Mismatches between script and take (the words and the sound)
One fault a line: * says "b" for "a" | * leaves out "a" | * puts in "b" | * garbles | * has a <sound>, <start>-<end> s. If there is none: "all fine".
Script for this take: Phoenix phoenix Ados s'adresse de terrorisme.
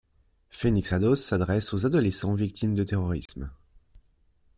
* leaves out "phoenix"
* puts in "aux adolescents victimes"
* has a dropout, 3.3-3.3 s